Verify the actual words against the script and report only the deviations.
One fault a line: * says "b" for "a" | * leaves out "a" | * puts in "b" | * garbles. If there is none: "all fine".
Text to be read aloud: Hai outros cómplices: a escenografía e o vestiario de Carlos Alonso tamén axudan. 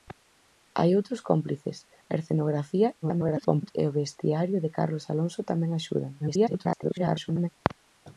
* garbles
* garbles